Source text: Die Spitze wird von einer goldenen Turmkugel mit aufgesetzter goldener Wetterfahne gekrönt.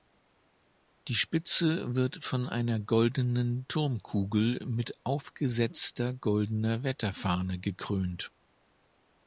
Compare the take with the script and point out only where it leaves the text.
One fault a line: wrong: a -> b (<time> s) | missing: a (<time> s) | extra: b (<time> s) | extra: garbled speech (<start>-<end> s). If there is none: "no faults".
no faults